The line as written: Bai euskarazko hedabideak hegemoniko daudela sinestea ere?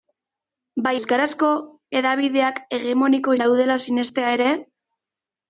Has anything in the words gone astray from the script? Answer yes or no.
no